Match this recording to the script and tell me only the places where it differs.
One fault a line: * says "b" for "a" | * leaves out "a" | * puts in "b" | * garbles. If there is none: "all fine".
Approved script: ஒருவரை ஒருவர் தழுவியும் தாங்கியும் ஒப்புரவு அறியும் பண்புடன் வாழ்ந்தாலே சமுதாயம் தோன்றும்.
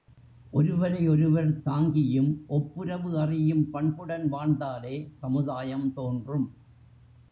* leaves out "தழுவியும்"